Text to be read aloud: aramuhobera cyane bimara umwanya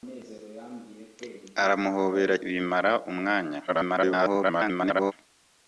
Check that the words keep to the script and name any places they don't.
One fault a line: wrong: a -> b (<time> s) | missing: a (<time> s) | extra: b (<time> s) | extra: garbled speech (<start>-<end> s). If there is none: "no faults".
missing: cyane (2.4 s)
extra: garbled speech (3.7-5.1 s)